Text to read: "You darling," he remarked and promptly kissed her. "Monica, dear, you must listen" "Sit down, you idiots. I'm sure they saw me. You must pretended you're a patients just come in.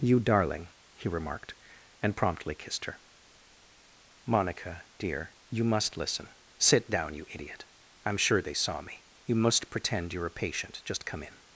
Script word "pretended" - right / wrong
wrong